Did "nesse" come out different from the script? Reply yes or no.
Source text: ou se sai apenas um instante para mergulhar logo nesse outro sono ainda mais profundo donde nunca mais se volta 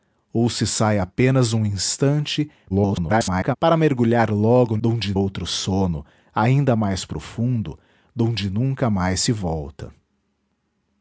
yes